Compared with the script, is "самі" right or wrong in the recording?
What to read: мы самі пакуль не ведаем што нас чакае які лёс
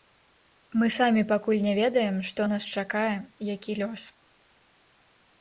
right